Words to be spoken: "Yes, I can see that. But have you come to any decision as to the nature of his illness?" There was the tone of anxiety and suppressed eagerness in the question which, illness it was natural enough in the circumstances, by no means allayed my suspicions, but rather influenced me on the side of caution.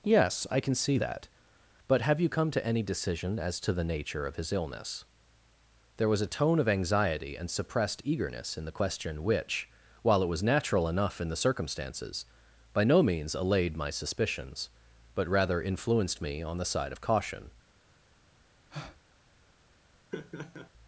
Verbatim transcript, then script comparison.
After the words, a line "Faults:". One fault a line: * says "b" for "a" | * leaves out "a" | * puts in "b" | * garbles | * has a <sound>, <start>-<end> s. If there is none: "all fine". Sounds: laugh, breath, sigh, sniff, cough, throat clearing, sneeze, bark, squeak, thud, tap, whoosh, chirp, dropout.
"Yes, I can see that. But have you come to any decision as to the nature of his illness?" There was a tone of anxiety and suppressed eagerness in the question which, while it was natural enough in the circumstances, by no means allayed my suspicions, but rather influenced me on the side of caution.
Faults:
* says "a" for "the"
* says "while" for "illness"
* has a breath, 18.7-19.0 s
* has a laugh, 20.1-20.7 s